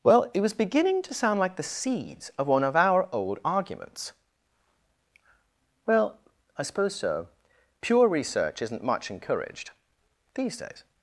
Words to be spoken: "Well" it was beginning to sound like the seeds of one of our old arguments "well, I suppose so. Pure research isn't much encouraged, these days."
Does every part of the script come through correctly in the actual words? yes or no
yes